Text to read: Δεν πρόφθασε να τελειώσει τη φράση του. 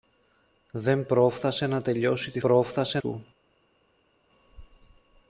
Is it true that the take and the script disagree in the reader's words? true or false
true